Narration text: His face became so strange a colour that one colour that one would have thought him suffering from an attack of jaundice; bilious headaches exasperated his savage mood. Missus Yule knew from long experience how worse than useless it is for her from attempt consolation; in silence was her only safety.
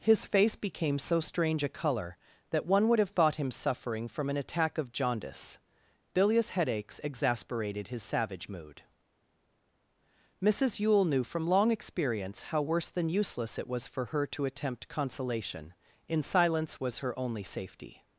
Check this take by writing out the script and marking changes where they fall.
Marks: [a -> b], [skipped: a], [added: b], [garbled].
His face became so strange a colour that one [skipped: colour that one] would have thought him suffering from an attack of jaundice; bilious headaches exasperated his savage mood. Missus Yule knew from long experience how worse than useless it [is -> was] for her [from -> to] attempt consolation; in silence was her only safety.